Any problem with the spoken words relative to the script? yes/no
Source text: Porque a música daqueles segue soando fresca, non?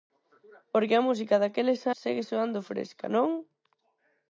no